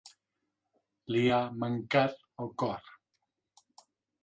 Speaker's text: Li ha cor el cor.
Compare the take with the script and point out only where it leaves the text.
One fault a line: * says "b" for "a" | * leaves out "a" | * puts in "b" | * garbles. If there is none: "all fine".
* says "mancat" for "cor"